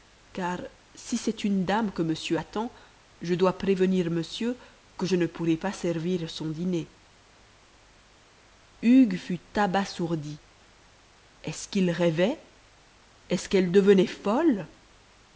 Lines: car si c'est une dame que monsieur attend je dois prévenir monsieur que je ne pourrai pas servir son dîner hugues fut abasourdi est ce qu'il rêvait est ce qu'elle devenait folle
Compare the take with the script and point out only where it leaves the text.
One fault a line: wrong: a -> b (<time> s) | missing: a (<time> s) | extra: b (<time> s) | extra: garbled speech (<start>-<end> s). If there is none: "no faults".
no faults